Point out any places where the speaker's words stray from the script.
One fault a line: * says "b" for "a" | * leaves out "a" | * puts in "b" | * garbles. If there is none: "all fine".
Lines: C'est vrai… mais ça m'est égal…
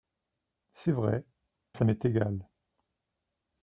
* leaves out "mais"